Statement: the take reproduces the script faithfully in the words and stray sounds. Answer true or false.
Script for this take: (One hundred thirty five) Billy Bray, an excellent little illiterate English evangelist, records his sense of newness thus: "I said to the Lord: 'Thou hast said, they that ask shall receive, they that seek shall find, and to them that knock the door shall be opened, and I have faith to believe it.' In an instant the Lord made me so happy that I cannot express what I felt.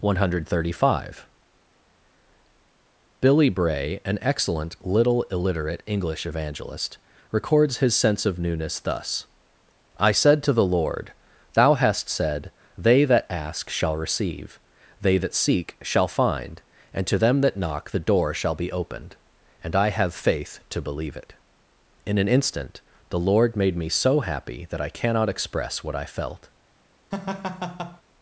false